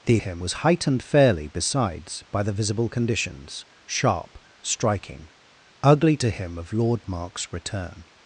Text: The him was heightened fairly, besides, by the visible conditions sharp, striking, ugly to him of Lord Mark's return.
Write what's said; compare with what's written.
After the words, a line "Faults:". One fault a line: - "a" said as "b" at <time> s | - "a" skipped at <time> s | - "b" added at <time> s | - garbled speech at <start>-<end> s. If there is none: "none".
The him was heightened fairly, besides, by the visible conditions sharp, striking, ugly to him of Lord Mark's return.
Faults:
none